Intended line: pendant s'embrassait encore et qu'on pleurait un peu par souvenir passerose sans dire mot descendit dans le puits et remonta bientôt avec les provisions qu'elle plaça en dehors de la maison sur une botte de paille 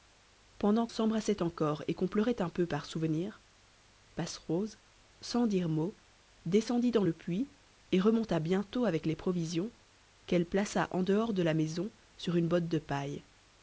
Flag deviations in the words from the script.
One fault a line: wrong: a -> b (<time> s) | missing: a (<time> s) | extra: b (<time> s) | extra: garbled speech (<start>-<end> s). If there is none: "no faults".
no faults